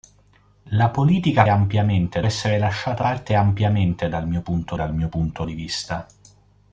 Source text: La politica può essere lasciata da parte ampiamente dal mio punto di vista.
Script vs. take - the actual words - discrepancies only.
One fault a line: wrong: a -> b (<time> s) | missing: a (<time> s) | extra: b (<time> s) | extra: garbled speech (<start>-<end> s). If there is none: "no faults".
wrong: può -> ampiamente (1.5 s)
missing: da (3.0 s)
extra: dal mio punto (4.7 s)